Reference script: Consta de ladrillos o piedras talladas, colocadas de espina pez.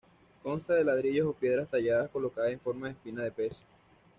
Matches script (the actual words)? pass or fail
fail